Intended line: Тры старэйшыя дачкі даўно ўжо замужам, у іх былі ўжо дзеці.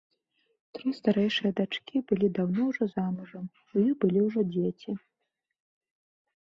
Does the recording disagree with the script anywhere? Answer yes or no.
yes